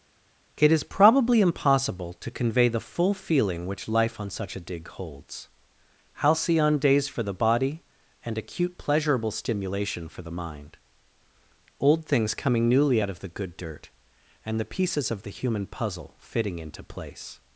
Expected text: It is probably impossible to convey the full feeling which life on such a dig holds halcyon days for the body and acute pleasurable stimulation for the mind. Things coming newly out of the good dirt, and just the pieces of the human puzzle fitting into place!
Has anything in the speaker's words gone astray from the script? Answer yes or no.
yes